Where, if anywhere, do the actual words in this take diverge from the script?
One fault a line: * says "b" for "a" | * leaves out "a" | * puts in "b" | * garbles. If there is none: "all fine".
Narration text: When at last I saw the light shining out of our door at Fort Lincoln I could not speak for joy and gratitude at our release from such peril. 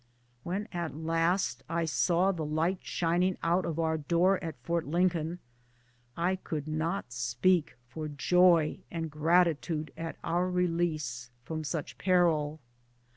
all fine